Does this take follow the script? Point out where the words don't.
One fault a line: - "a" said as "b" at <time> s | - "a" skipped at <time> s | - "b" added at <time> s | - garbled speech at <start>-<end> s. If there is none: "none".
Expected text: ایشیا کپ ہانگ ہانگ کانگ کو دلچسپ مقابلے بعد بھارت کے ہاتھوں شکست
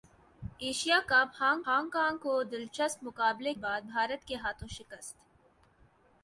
none